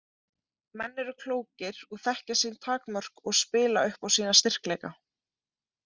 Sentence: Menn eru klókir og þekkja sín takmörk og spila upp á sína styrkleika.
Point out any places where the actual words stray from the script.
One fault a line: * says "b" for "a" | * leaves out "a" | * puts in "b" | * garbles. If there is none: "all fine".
all fine